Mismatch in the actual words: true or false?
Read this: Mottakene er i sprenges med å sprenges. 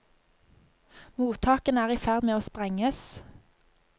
true